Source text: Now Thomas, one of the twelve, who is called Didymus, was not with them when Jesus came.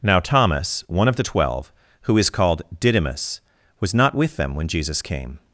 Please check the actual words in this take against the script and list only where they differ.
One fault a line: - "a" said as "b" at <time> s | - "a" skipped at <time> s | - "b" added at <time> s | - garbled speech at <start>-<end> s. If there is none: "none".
none